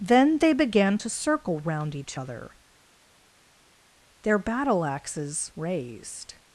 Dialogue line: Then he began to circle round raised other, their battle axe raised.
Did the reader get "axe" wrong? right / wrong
wrong